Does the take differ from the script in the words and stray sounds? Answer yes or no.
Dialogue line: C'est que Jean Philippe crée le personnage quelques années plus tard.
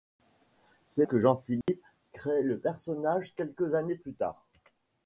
yes